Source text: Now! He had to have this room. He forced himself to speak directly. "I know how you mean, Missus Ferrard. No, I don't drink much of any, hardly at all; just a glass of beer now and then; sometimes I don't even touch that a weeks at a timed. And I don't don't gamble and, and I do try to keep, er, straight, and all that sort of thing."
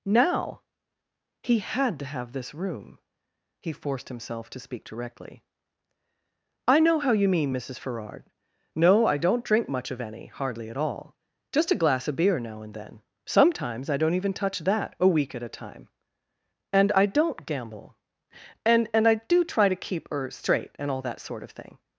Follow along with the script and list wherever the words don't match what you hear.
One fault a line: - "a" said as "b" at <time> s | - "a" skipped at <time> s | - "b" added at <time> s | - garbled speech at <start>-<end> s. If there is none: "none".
- "weeks" said as "week" at 15.1 s
- "timed" said as "time" at 15.5 s
- "don't" skipped at 17.5 s